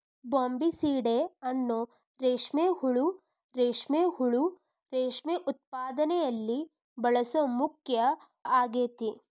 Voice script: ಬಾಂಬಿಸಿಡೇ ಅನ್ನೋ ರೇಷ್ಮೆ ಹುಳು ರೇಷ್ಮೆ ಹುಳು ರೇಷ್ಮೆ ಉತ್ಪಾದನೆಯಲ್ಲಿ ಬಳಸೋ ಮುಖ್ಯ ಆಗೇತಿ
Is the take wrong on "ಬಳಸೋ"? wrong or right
right